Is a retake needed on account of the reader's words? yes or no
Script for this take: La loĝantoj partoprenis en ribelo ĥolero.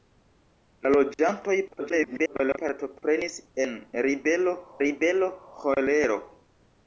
yes